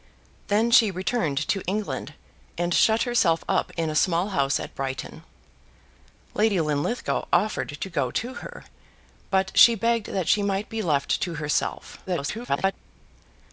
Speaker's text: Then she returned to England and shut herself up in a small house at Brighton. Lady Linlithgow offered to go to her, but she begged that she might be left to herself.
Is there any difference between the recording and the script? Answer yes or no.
yes